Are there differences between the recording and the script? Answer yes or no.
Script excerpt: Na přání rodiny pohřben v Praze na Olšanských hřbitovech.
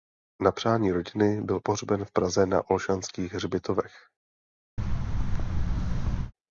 yes